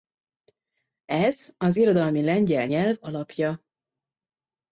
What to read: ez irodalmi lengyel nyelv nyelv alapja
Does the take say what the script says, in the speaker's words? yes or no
no